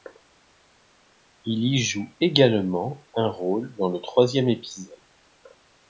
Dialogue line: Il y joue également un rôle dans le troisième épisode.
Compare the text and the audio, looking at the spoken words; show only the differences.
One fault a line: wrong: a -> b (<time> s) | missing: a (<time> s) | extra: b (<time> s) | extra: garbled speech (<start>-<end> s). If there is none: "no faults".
no faults